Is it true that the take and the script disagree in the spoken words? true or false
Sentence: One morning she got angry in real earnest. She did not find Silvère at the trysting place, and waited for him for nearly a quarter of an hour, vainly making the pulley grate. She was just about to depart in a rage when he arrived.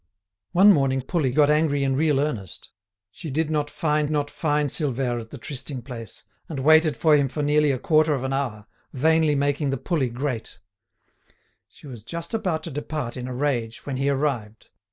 true